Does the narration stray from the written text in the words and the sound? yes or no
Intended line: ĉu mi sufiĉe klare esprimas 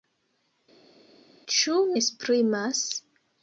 yes